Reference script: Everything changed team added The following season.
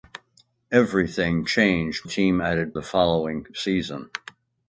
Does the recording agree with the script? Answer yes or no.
yes